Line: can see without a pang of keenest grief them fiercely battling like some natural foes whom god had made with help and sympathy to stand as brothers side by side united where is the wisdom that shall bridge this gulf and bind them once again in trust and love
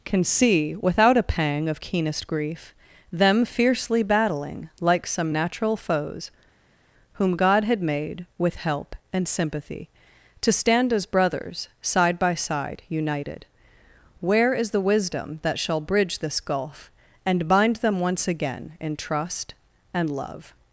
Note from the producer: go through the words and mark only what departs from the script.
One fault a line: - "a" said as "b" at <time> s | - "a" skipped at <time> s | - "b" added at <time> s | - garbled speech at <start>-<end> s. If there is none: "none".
none